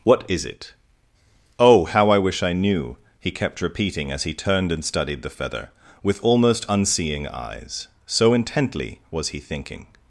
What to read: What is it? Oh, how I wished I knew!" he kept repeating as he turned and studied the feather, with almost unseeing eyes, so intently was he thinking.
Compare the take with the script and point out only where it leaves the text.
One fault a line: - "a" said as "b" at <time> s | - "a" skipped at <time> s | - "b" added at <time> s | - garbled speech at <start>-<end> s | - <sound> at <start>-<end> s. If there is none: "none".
- "wished" said as "wish" at 2.2 s